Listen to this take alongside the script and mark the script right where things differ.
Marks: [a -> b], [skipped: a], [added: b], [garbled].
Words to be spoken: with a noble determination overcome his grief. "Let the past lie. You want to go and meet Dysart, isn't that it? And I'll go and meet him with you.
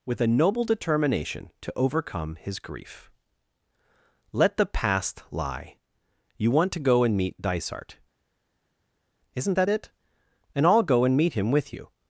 with a noble determination [added: to] overcome his grief. "Let the past lie. You want to go and meet Dysart, isn't that it? And I'll go and meet him with you.